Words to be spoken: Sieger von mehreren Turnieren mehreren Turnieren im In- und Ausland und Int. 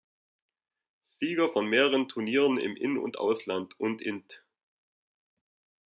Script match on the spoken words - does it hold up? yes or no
no